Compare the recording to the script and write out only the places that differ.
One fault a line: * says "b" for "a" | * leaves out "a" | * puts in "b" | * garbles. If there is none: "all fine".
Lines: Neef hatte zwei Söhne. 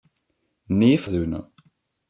* leaves out "hatte zwei"